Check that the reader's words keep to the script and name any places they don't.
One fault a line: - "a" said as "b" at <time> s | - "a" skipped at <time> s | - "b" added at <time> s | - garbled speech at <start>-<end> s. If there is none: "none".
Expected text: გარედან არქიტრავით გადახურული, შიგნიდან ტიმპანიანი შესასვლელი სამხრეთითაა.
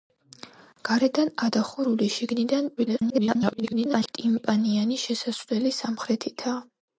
- "არქიტრავით" skipped at 1.3 s
- garbled speech at 2.8-4.1 s